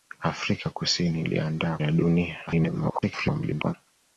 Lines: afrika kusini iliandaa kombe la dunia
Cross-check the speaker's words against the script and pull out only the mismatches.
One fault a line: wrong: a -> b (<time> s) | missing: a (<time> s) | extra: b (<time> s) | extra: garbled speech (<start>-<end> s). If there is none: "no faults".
missing: kombe (1.8 s)
extra: garbled speech (2.5-3.7 s)